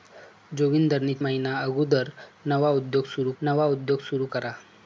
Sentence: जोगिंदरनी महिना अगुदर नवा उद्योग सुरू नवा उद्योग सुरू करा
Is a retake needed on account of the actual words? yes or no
no